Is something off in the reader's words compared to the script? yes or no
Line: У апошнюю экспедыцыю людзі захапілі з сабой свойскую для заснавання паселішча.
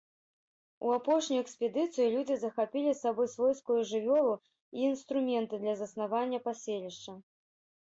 yes